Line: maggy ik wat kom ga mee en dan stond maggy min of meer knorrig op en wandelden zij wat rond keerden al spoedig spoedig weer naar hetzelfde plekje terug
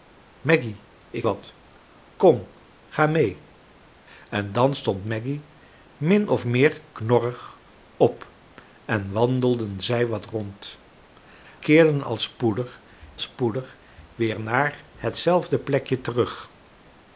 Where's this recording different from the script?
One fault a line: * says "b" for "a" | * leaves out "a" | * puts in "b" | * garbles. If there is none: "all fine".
all fine